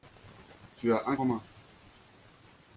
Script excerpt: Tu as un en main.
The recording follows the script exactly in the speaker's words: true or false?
true